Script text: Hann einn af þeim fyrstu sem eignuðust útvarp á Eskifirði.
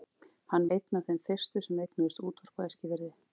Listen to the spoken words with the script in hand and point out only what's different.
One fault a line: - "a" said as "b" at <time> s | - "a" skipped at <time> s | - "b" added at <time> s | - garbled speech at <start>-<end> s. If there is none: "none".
none